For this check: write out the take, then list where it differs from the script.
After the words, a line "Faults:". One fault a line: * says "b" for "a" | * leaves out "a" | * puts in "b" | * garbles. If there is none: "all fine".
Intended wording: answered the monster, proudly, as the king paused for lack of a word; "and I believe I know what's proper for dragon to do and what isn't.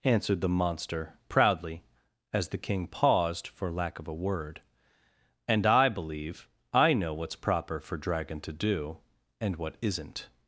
answered the monster, proudly, as the king paused for lack of a word; "and I believe I know what's proper for dragon to do and what isn't.
Faults:
all fine